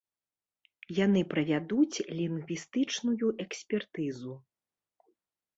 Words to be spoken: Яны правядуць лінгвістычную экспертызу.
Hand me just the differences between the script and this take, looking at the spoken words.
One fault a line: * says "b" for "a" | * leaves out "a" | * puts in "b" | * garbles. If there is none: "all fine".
all fine